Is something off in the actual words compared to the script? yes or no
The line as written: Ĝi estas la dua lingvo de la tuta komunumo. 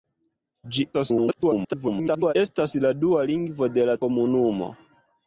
yes